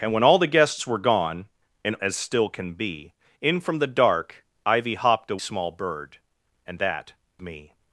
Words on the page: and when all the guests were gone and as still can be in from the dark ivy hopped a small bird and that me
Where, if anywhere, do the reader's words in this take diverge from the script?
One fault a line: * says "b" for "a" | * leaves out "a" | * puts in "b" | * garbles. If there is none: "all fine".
all fine